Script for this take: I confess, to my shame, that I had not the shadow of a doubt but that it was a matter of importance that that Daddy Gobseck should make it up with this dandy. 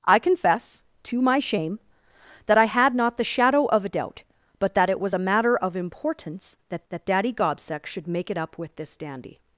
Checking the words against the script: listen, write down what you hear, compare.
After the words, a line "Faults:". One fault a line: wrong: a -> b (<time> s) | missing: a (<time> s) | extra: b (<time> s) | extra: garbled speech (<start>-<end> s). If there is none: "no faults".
I confess, to my shame, that I had not the shadow of a doubt but that it was a matter of importance that that Daddy Gobseck should make it up with this dandy.
Faults:
no faults